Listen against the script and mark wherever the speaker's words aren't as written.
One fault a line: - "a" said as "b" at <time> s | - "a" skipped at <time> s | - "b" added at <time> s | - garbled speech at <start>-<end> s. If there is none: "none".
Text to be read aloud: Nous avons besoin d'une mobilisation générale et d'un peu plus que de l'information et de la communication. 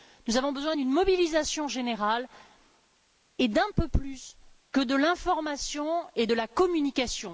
none